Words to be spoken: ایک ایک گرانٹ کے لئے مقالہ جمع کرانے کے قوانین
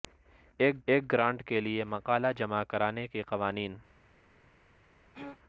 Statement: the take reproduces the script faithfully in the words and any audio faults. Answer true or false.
false